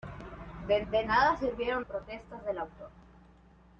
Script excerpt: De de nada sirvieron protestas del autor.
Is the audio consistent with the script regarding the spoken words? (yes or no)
yes